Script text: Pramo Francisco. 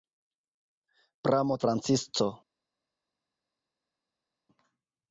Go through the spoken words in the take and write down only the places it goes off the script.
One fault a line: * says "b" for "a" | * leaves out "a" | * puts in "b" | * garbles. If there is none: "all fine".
all fine